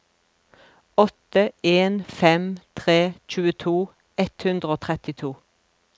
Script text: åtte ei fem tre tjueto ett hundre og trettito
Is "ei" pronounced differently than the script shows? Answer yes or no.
yes